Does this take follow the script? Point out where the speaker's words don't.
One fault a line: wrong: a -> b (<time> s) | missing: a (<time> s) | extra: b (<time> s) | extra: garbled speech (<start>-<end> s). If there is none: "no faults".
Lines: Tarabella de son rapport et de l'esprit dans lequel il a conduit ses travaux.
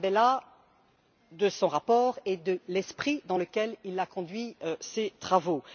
no faults